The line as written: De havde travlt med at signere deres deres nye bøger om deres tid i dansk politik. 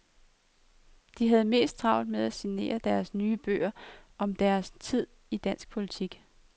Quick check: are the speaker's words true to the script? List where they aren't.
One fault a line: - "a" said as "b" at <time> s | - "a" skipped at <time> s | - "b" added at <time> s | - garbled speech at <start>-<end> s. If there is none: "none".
- "mest" added at 1.4 s
- "deres" skipped at 3.1 s